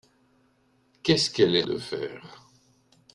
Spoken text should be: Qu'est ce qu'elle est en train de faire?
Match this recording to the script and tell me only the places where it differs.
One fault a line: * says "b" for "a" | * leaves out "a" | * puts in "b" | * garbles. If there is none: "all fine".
* leaves out "en train"